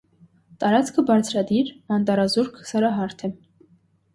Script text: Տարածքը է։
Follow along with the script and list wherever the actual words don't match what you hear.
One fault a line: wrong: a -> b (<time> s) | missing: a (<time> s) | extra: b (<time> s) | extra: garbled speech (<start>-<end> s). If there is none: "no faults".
extra: բարձրադիր անտառազուրկ սարահարթ (1.1 s)